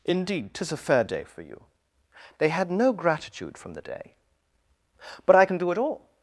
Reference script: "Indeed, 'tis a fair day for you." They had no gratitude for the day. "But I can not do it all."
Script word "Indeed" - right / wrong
right